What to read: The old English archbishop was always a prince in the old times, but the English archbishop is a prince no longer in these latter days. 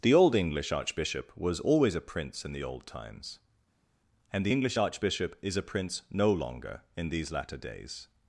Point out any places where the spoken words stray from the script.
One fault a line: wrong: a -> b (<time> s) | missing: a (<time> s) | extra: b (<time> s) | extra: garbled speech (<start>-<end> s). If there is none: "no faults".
wrong: but -> and (4.3 s)